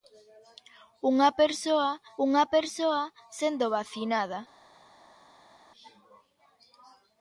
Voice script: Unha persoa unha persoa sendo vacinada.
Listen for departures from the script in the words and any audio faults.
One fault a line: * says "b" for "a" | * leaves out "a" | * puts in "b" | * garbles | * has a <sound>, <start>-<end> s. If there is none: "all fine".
all fine